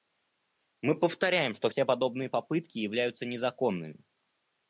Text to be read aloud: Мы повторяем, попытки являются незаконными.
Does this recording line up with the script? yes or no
no